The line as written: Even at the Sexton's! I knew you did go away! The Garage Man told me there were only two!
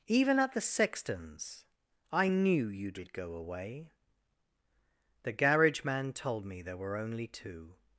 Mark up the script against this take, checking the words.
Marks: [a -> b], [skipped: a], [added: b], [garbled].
Even at the Sexton's! I knew you did go away! The Garage Man told me there were only two!